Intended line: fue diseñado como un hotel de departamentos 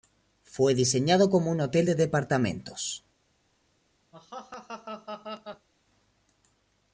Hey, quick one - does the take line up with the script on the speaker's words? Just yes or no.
yes